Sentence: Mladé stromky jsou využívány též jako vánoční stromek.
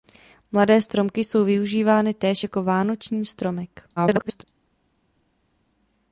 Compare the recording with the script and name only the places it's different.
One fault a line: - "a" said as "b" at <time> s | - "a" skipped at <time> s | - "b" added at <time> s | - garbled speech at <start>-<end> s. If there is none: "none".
- garbled speech at 4.0-4.4 s